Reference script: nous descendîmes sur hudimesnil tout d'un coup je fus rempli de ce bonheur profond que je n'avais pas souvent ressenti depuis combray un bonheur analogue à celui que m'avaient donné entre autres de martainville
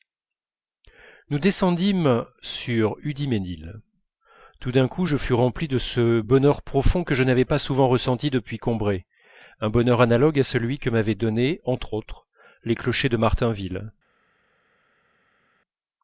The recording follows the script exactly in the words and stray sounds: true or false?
false